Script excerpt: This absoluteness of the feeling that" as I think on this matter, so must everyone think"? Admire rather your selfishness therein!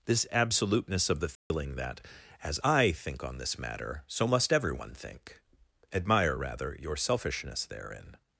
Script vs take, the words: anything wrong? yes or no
no